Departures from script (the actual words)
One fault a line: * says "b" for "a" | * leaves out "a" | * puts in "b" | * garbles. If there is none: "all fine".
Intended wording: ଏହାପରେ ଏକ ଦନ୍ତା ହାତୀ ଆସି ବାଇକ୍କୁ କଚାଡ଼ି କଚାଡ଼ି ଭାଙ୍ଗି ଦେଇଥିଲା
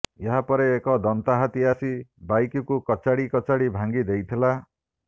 all fine